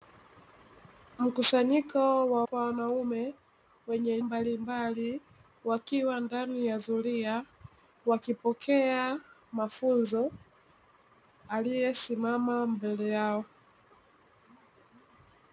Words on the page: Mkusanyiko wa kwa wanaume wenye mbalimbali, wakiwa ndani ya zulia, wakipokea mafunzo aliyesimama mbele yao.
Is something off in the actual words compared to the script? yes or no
no